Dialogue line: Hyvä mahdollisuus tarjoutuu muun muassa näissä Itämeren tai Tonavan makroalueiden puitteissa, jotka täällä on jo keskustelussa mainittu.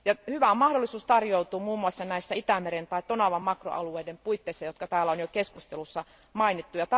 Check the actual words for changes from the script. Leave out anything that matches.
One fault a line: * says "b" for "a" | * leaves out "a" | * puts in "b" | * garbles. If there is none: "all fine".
all fine